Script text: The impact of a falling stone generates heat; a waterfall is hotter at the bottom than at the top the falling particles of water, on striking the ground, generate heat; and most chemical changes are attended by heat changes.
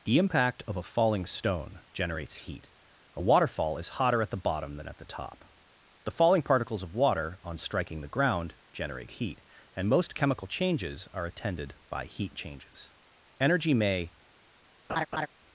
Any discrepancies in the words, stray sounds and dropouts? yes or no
yes